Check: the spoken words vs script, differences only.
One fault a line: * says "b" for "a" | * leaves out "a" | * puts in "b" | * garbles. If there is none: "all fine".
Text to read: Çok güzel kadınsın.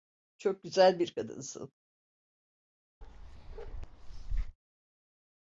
* puts in "bir"